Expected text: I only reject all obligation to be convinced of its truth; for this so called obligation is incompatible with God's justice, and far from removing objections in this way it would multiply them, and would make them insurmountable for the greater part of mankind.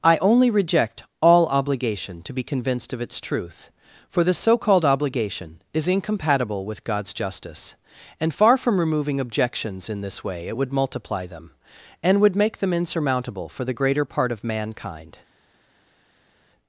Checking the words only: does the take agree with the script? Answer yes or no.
yes